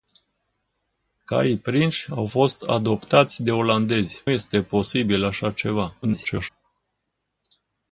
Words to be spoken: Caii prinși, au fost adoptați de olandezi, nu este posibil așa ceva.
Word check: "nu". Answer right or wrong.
wrong